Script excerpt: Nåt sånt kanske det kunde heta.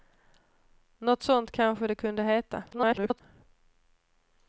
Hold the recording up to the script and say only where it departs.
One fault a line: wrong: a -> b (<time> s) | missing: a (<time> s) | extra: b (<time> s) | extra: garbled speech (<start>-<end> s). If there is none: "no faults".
extra: garbled speech (2.7-3.2 s)